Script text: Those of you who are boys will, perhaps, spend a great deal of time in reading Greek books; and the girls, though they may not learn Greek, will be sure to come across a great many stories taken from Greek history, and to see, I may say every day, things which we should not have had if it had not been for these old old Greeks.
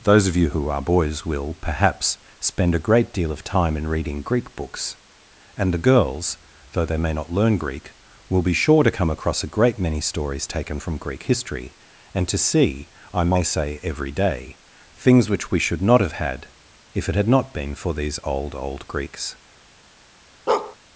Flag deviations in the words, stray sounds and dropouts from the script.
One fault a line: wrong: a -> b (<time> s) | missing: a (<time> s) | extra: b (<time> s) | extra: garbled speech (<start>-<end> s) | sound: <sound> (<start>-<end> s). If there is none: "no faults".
sound: bark (20.5-20.8 s)